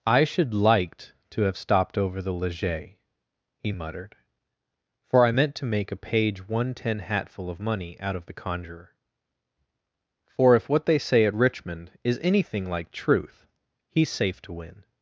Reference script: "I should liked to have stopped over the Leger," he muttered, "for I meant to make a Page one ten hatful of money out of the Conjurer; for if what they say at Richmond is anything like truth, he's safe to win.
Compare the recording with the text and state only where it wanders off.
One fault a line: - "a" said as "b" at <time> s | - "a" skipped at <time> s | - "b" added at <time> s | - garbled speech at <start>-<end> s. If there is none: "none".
none